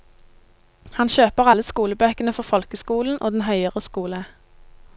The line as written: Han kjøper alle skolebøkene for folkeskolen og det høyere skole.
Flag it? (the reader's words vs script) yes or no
yes